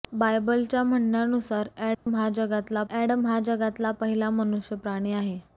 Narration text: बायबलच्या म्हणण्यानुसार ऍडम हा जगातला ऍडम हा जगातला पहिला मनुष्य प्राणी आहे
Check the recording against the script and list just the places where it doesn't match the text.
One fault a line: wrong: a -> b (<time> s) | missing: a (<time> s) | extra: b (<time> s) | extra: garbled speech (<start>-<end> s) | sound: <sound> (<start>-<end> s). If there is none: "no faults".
sound: dropout (1.9-2.1 s)